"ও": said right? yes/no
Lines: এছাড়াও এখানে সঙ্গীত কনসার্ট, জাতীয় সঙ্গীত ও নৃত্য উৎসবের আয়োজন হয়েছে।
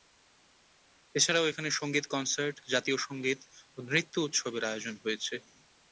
yes